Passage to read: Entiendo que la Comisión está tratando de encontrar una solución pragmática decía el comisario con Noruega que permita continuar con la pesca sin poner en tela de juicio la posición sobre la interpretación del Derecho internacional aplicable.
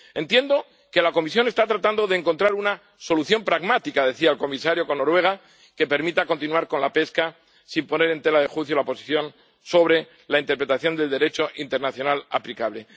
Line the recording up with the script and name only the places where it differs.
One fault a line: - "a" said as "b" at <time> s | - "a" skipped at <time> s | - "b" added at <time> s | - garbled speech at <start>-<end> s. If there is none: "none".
none